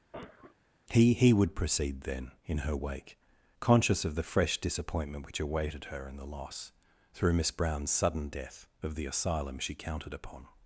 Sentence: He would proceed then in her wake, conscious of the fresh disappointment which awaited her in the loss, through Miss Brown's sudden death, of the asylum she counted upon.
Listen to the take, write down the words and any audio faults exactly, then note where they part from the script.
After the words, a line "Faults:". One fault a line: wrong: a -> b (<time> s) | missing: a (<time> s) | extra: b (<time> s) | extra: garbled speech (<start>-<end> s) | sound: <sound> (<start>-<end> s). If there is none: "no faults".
He he would proceed then in her wake, conscious of the fresh disappointment which awaited her in the loss, through Miss Brown's sudden death, of the asylum she counted upon.
Faults:
sound: cough (0.1-0.6 s)
extra: he (1.1 s)